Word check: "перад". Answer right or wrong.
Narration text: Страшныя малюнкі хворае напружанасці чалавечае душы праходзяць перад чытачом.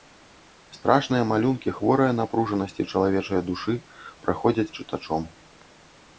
wrong